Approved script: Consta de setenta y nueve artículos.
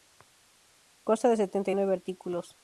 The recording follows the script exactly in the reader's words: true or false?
true